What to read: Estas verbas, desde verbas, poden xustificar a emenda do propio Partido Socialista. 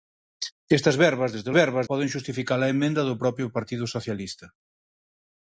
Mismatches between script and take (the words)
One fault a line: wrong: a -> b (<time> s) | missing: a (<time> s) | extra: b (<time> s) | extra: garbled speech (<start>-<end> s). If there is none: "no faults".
no faults